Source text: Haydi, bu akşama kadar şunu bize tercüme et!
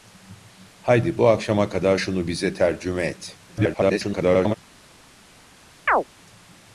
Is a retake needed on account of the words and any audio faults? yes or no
yes